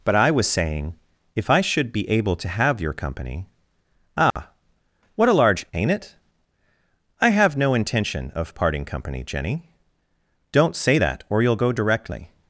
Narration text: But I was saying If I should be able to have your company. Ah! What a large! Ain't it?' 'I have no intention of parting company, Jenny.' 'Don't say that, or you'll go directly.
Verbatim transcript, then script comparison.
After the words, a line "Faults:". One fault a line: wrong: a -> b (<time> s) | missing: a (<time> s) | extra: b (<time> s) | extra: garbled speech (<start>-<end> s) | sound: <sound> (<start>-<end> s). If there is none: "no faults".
But I was saying If I should be able to have your company. Ah! What a large! Ain't it?' 'I have no intention of parting company, Jenny.' 'Don't say that, or you'll go directly.
Faults:
sound: dropout (4.3-4.4 s)